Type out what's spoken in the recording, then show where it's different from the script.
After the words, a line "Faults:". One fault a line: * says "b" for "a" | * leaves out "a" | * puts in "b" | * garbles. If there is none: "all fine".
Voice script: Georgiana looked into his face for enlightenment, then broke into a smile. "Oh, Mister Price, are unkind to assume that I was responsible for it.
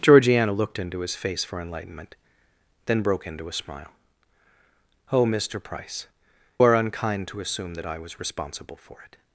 Georgiana looked into his face for enlightenment, then broke into a smile. "Oh, Mister Price, are unkind to assume that I was responsible for it.
Faults:
all fine